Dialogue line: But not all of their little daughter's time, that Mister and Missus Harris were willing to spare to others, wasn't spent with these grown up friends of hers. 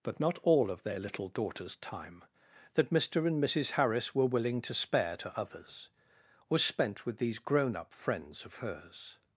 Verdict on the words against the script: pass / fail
fail